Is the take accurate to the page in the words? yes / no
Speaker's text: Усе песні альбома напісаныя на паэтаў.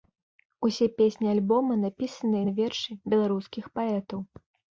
no